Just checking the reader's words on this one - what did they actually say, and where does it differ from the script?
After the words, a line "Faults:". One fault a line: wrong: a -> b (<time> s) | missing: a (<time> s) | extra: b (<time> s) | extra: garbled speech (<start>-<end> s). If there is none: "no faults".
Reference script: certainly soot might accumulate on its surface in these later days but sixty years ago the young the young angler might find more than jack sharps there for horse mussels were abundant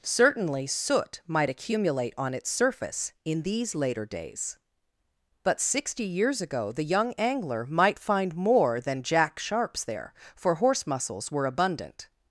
certainly soot might accumulate on its surface in these later days but sixty years ago the young angler might find more than jack sharps there for horse mussels were abundant
Faults:
missing: the young (7.1 s)